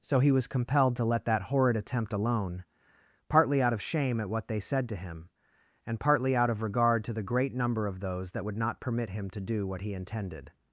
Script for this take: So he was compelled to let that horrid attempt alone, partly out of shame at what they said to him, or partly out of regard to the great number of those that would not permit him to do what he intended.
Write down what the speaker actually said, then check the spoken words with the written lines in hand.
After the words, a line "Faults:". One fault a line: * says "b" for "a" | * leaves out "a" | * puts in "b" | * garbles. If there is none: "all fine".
So he was compelled to let that horrid attempt alone, partly out of shame at what they said to him, and partly out of regard to the great number of those that would not permit him to do what he intended.
Faults:
* says "and" for "or"